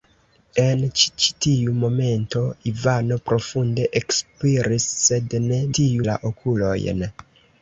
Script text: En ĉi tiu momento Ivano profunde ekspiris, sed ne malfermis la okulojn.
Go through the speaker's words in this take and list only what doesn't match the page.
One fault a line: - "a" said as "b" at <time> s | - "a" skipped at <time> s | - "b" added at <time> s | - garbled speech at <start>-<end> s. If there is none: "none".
- "ĉi" added at 1.2 s
- "malfermis" said as "tiu" at 5.8 s